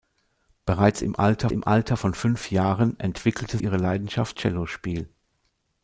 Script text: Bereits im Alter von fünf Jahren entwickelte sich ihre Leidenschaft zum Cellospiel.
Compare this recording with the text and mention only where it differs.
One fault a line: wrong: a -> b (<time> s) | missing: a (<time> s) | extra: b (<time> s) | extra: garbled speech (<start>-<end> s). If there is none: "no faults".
extra: im Alter (1.5 s)
missing: sich (3.6 s)
missing: zum (4.4 s)